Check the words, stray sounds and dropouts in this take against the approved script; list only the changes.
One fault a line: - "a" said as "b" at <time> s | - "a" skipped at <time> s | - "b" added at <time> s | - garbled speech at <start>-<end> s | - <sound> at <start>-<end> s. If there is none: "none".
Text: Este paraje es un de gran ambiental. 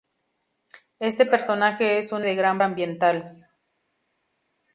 none